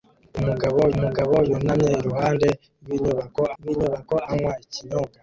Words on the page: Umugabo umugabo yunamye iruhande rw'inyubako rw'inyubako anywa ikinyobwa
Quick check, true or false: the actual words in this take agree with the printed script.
true